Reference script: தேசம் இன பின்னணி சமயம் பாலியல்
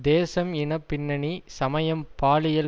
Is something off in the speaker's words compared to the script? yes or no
no